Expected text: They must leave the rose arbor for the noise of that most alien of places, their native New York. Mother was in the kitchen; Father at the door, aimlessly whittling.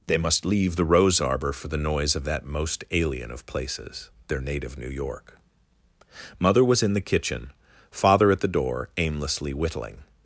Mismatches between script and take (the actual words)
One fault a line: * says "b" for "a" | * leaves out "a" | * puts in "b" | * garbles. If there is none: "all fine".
all fine